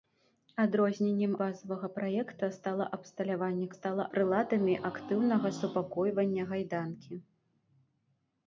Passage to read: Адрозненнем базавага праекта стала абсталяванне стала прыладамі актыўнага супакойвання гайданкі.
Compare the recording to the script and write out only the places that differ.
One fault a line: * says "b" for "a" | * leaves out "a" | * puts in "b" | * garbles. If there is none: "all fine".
all fine